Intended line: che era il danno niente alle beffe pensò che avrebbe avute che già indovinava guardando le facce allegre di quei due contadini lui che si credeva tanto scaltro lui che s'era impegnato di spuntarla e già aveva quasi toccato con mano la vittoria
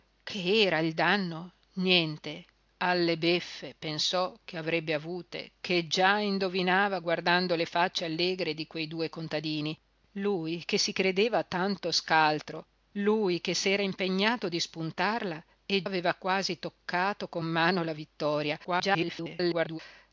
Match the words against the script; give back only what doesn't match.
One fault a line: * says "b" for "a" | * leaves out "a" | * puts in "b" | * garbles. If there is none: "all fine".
* leaves out "già"
* garbles